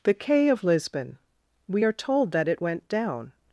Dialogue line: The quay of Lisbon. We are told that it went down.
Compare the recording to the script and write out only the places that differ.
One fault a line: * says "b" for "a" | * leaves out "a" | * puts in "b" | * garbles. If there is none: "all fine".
all fine